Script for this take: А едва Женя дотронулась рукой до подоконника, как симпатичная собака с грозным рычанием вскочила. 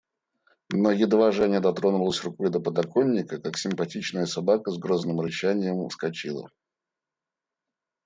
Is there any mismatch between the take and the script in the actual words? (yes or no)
yes